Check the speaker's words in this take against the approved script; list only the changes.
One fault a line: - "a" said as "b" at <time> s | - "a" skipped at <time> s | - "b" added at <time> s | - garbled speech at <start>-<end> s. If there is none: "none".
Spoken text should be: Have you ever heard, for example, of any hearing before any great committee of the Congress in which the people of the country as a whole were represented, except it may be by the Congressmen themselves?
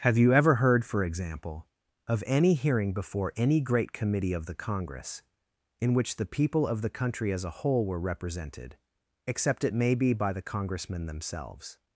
none